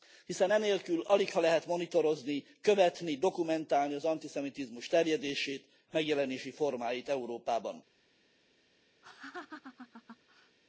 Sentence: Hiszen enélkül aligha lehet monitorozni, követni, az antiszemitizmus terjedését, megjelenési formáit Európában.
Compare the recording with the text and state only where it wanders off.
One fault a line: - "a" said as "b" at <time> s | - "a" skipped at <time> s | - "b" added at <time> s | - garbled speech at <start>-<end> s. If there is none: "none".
- "dokumentálni" added at 3.2 s